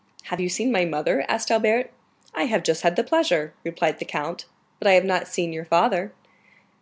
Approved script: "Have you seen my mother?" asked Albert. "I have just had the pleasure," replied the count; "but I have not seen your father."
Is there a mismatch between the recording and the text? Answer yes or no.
no